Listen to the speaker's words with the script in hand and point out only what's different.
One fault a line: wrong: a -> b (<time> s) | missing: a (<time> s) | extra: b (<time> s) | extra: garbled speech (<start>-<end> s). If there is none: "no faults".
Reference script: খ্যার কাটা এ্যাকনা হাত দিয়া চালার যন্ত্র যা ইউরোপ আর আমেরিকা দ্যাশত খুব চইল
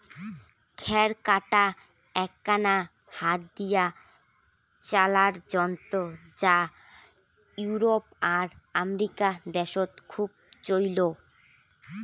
no faults